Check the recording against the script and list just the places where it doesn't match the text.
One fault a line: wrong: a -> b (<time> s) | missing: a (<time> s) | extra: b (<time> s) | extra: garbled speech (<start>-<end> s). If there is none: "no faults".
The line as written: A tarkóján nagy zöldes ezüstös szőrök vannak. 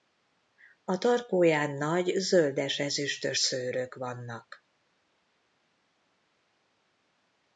no faults